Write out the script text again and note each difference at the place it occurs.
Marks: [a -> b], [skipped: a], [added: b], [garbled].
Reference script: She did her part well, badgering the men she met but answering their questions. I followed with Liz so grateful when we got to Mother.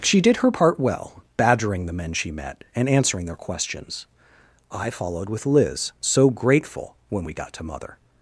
She did her part well, badgering the men she met [but -> and] answering their questions. I followed with Liz so grateful when we got to Mother.